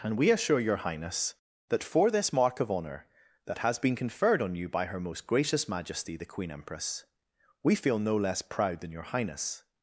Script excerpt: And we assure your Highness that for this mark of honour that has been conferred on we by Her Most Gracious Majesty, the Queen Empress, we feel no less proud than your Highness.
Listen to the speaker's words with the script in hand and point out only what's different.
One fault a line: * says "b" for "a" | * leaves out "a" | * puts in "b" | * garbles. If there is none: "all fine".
* says "you" for "we"